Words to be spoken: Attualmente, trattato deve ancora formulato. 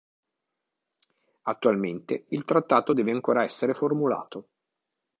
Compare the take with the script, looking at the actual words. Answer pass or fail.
fail